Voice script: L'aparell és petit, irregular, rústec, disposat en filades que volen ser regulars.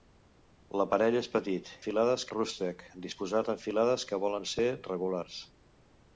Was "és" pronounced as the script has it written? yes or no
yes